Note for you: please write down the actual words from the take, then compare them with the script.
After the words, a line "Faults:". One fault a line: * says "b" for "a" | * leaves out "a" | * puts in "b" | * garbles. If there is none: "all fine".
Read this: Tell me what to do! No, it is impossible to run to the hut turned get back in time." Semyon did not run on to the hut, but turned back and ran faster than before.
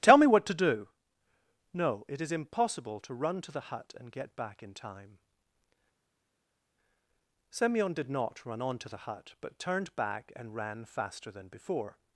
Tell me what to do! No, it is impossible to run to the hut and get back in time." Semyon did not run on to the hut, but turned back and ran faster than before.
Faults:
* says "and" for "turned"